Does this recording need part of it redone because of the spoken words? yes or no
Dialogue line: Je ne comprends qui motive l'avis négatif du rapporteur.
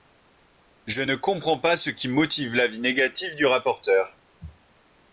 yes